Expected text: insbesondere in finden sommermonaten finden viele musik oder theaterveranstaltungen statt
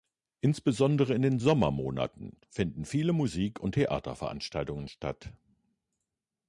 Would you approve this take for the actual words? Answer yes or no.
no